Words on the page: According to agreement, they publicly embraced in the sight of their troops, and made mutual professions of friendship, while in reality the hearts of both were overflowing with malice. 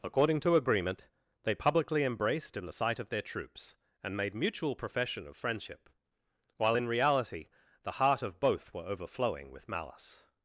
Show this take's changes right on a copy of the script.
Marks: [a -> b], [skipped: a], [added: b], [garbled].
According to agreement, they publicly embraced in the sight of their troops, and made mutual [professions -> profession] of friendship, while in reality the [hearts -> heart] of both were overflowing with malice.